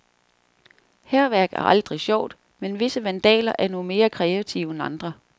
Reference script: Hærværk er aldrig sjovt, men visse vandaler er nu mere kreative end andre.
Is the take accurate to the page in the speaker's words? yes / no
yes